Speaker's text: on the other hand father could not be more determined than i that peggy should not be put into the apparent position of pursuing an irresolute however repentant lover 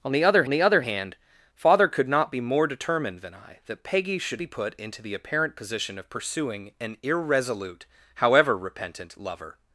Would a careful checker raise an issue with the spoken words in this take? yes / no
yes